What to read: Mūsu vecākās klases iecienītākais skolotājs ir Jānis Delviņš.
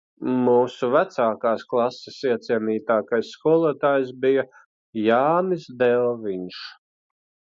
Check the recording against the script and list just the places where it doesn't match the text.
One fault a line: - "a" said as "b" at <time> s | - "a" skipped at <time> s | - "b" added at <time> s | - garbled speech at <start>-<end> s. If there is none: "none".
- "ir" said as "bija" at 4.2 s